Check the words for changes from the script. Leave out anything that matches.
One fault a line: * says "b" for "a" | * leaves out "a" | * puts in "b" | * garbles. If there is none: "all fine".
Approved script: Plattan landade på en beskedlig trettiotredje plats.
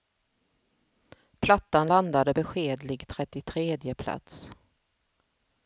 * leaves out "på en"